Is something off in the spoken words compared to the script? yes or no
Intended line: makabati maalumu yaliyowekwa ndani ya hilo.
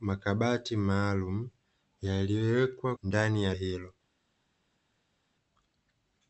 no